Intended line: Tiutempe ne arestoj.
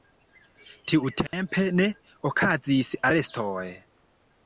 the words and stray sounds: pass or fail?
fail